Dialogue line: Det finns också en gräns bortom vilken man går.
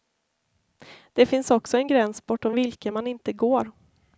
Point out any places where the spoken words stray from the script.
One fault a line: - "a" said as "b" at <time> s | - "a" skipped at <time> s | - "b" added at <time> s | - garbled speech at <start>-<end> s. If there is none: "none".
- "inte" added at 3.1 s